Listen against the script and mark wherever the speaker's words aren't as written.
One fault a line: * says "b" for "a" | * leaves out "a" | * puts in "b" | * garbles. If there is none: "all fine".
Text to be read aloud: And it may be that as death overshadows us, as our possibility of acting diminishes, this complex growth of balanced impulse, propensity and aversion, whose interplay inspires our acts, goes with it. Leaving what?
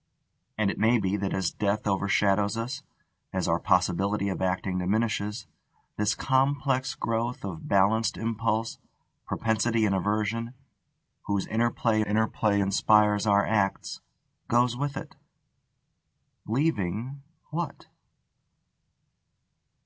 * puts in "interplay"